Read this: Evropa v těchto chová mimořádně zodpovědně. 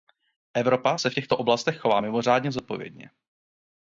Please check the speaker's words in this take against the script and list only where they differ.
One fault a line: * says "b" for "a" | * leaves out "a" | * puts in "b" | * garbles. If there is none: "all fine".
* puts in "se"
* puts in "oblastech"